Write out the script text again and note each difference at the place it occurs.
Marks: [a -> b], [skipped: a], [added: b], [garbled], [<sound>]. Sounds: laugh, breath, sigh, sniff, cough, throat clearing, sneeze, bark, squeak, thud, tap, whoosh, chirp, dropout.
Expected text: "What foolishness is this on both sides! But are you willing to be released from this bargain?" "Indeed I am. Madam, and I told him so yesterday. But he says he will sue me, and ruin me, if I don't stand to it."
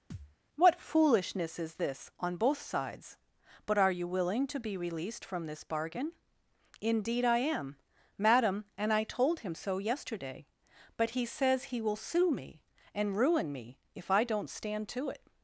[thud] "What foolishness is this on both sides! But are you willing to be released from this bargain?" "Indeed I am. Madam, and I told him so yesterday. But he says he will sue me, and ruin me, if I don't stand to it."